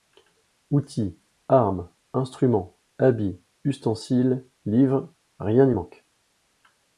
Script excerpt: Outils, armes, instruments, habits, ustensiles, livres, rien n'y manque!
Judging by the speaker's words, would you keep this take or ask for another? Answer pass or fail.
pass